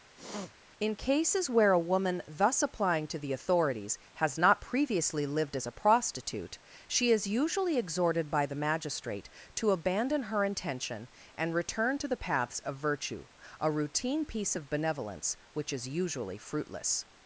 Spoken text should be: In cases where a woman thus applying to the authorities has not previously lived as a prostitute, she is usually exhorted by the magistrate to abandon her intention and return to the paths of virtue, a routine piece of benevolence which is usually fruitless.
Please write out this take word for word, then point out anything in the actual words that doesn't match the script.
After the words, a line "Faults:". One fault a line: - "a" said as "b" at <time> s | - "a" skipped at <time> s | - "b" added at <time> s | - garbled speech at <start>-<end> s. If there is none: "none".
In cases where a woman thus applying to the authorities has not previously lived as a prostitute, she is usually exhorted by the magistrate to abandon her intention and return to the paths of virtue, a routine piece of benevolence which is usually fruitless.
Faults:
none